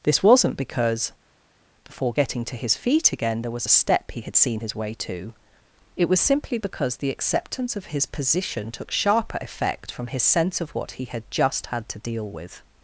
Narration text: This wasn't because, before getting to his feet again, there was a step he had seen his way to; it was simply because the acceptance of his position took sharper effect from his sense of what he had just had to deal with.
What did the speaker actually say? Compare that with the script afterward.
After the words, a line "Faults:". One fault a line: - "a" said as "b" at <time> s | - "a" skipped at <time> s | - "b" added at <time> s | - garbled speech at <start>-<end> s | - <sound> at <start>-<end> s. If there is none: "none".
This wasn't because, before getting to his feet again, there was a step he had seen his way to; it was simply because the acceptance of his position took sharper effect from his sense of what he had just had to deal with.
Faults:
none